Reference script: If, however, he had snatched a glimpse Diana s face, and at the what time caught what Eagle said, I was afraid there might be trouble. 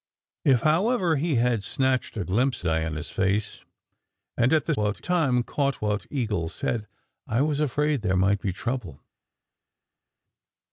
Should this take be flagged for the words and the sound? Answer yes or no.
no